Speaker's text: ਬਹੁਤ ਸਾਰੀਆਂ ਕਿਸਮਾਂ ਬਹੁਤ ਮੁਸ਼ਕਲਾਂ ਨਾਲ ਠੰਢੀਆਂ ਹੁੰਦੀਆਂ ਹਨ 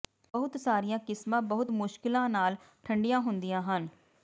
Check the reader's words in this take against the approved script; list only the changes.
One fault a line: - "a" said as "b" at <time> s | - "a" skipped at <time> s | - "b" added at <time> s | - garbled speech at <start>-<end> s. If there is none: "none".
none